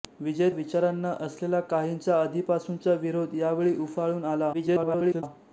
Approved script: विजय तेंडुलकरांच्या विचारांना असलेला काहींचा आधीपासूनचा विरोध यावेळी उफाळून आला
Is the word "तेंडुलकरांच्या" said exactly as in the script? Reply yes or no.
no